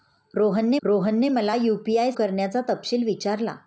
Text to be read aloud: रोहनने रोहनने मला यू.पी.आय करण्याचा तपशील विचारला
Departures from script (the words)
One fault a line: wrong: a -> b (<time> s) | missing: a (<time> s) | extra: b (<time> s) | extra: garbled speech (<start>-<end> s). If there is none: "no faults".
no faults